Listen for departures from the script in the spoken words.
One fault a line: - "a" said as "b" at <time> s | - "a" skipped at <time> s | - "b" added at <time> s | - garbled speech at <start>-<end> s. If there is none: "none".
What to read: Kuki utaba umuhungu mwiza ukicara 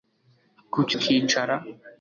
- "utaba umuhungu mwiza" skipped at 0.9 s